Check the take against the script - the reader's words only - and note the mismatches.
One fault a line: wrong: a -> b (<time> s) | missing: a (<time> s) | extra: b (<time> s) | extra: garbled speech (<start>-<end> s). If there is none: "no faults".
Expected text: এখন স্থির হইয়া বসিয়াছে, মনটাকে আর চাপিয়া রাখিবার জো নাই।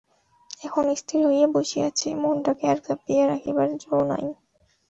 no faults